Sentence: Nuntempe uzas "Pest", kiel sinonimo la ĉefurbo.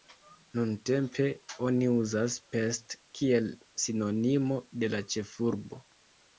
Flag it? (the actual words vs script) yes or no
yes